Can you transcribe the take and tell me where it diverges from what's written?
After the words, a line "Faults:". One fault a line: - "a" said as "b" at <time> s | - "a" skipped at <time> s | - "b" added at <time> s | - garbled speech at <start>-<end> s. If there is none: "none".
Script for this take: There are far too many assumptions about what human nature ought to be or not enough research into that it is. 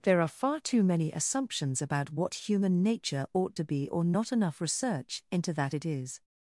There are far too many assumptions about what human nature ought to be or not enough research into that it is.
Faults:
none